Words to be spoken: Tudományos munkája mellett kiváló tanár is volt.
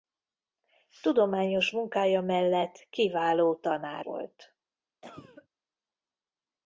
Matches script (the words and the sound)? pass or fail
fail